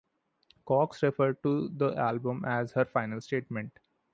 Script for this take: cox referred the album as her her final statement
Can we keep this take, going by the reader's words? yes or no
no